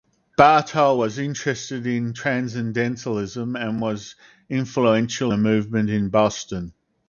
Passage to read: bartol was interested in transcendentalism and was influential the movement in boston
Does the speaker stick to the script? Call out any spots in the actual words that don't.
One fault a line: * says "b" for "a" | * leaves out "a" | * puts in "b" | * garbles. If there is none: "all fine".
all fine